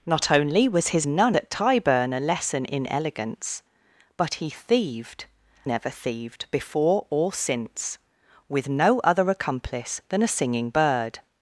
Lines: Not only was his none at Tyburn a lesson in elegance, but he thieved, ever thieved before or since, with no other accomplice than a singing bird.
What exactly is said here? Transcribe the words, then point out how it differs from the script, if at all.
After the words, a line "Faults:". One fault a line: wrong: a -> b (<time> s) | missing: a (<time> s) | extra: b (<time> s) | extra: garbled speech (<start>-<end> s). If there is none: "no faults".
Not only was his none at Tyburn a lesson in elegance, but he thieved, ever thieved before or since, with no other accomplice than a singing bird.
Faults:
no faults